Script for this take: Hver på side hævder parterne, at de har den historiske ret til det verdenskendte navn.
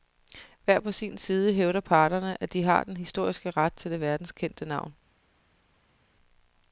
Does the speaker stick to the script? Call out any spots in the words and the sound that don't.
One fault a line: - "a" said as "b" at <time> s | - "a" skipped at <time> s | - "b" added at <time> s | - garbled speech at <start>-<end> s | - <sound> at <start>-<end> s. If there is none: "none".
- "sin" added at 0.9 s